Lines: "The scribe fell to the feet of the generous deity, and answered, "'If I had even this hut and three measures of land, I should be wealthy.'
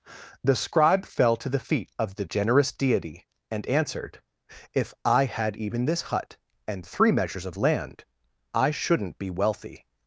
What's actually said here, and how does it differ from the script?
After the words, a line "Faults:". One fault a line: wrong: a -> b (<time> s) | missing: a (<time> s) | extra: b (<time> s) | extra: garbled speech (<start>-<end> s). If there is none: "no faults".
"The scribe fell to the feet of the generous deity, and answered, "'If I had even this hut and three measures of land, I shouldn't be wealthy.'
Faults:
wrong: should -> shouldn't (8.7 s)